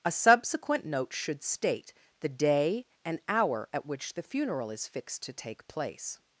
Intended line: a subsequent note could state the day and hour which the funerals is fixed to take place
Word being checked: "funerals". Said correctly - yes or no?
no